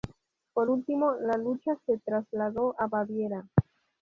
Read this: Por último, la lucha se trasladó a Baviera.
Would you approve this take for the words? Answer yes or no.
yes